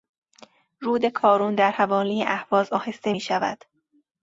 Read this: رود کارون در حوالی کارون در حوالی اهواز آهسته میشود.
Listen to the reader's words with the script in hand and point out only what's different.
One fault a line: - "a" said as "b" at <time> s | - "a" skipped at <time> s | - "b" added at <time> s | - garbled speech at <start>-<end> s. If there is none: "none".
- "کارون در حوالی" skipped at 2.2 s